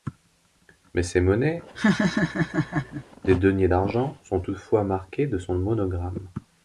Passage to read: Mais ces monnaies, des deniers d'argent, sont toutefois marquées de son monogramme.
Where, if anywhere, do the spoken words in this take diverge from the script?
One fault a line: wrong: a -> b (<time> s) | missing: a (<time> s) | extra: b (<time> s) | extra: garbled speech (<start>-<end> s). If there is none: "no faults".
no faults